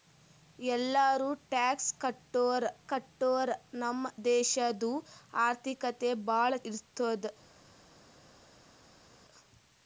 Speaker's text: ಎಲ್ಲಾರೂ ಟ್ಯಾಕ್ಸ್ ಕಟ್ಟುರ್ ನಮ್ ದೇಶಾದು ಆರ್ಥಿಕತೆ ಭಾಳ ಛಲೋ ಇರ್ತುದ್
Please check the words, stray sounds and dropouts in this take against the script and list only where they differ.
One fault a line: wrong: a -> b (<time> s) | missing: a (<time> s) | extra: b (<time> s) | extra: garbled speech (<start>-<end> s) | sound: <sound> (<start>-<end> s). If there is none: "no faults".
extra: ಕಟ್ಟುರ್ (2.8 s)
missing: ಛಲೋ (6.5 s)